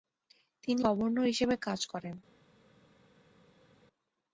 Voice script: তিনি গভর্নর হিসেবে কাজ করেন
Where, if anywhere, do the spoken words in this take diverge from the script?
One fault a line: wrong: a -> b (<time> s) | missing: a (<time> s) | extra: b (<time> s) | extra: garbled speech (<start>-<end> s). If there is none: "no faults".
no faults